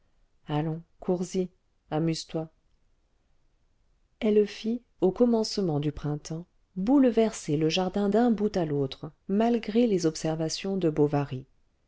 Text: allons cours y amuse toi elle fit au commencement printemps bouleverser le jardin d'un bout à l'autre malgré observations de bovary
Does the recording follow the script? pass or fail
fail